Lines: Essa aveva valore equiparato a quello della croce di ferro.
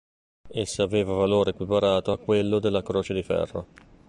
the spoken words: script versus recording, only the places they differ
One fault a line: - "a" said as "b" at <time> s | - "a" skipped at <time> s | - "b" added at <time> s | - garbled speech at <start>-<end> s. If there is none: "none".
none